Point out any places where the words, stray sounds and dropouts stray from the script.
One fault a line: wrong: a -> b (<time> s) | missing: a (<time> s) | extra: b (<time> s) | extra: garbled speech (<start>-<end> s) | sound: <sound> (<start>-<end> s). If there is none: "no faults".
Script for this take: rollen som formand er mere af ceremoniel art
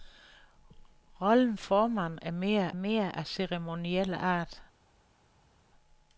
missing: som (1.6 s)
extra: mere (2.7 s)